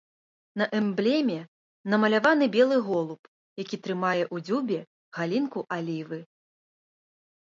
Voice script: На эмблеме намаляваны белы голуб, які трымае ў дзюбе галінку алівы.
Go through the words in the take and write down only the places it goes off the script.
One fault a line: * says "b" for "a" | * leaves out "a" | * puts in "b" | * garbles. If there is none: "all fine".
all fine